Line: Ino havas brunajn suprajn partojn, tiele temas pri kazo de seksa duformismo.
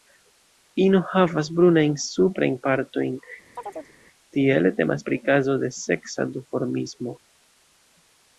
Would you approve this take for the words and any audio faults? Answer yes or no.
no